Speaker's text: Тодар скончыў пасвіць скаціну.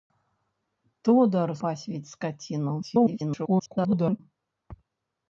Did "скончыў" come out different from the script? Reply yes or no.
yes